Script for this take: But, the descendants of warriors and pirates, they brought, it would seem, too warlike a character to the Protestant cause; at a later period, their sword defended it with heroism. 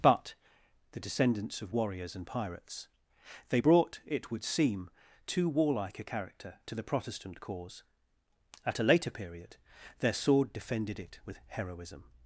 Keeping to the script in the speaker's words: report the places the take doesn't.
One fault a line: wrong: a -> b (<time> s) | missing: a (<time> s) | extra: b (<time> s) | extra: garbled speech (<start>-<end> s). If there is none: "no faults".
no faults